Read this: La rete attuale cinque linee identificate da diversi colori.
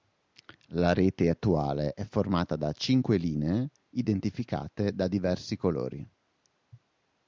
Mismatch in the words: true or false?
true